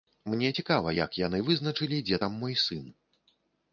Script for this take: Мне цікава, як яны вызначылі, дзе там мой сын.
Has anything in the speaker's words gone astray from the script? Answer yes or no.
no